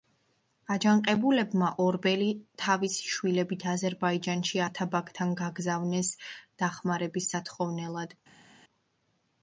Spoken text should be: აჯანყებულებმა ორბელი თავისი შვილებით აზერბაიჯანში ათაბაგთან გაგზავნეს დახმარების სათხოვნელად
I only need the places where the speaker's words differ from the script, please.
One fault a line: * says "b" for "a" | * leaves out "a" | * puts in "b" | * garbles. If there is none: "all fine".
all fine